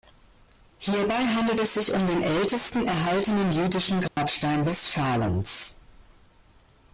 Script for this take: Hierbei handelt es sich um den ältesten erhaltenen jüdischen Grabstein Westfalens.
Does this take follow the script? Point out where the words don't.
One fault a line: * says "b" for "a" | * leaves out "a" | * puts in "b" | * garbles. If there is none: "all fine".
all fine